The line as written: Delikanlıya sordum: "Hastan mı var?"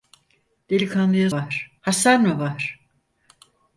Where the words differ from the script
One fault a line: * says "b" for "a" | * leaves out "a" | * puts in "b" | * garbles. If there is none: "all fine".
* says "var" for "sordum"